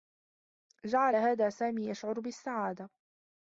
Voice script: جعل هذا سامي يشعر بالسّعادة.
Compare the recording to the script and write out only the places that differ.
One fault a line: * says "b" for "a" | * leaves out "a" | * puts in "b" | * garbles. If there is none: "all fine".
all fine